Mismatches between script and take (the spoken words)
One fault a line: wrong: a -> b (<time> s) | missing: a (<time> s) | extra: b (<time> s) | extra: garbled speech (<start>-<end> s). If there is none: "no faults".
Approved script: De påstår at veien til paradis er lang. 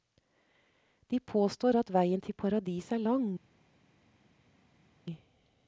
no faults